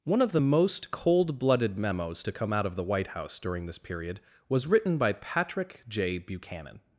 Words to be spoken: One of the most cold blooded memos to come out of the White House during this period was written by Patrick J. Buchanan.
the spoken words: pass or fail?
pass